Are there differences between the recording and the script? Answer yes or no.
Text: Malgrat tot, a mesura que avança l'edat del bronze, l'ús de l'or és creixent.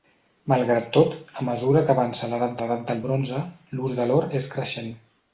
yes